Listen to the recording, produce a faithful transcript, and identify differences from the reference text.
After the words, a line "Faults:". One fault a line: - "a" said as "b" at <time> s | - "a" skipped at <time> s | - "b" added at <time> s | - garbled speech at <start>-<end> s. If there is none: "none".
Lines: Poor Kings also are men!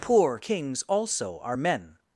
Poor Kings also are men!
Faults:
none